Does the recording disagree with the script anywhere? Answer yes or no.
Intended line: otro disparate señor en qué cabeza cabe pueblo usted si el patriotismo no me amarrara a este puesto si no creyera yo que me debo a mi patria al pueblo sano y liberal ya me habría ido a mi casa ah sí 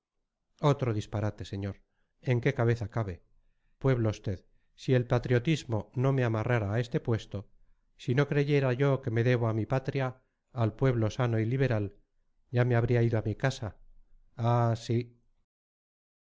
no